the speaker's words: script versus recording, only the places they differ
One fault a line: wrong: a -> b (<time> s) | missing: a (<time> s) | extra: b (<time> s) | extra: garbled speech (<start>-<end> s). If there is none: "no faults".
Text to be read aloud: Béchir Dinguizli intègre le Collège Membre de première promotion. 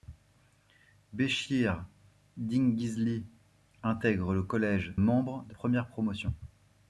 no faults